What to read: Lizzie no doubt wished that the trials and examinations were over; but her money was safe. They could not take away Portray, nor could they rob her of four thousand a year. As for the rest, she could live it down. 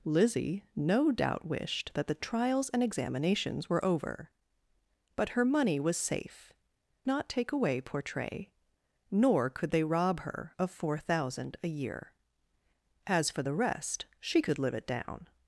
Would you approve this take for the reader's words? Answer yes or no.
no